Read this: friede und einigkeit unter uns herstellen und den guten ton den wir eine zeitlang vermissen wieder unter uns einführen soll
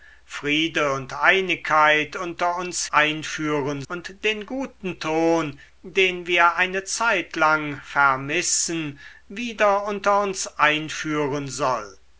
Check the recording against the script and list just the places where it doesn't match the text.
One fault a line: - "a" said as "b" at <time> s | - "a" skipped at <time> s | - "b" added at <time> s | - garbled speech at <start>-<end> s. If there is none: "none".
- "herstellen" said as "einführen" at 2.9 s